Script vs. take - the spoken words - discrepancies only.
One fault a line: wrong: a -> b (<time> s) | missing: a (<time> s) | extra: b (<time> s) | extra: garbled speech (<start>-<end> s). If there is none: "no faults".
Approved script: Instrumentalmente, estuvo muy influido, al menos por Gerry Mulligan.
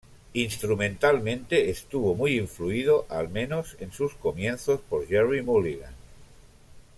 extra: en sus comienzos (3.8 s)